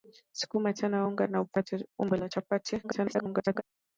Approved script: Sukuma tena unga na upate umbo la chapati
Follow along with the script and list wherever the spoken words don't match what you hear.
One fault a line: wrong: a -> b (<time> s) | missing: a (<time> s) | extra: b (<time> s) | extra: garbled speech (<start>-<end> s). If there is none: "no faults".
extra: garbled speech (2.8-3.6 s)